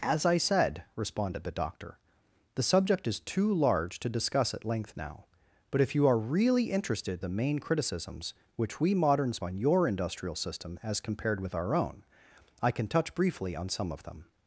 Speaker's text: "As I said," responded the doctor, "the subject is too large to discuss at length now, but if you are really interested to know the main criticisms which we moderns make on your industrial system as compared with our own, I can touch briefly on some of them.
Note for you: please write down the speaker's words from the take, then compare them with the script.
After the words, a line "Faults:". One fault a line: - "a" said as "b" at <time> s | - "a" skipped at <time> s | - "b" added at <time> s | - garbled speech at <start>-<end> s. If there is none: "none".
"As I said," responded the doctor, "the subject is too large to discuss at length now, but if you are really interested the main criticisms which we moderns on your industrial system as compared with our own, I can touch briefly on some of them.
Faults:
- "to know" skipped at 7.2 s
- "make" skipped at 9.4 s